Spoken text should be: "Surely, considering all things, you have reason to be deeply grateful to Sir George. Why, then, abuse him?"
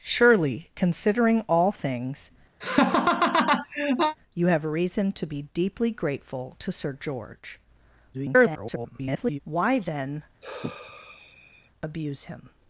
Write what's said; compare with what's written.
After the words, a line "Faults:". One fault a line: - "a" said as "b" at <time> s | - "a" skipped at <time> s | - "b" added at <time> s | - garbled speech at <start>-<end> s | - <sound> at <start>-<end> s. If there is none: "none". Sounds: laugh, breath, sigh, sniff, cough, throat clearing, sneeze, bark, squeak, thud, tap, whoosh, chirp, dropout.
"Surely, considering all things, you have reason to be deeply grateful to Sir George. [garbled] Why, then, abuse him?"
Faults:
- laugh at 2.6-4.2 s
- garbled speech at 8.1-9.4 s
- sigh at 10.4-11.7 s